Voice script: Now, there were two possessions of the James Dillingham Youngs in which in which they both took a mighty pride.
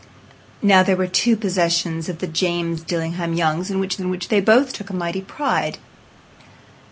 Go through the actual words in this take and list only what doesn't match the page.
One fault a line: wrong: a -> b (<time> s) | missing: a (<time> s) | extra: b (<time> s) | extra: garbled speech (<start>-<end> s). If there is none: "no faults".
no faults